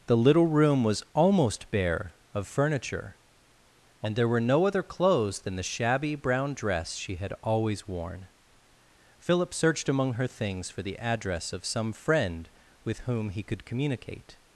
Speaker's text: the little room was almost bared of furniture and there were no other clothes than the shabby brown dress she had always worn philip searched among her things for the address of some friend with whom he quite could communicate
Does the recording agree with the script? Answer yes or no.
no